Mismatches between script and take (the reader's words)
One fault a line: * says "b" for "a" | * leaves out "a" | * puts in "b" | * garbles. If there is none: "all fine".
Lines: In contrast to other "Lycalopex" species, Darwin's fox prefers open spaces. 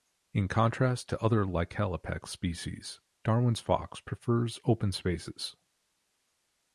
all fine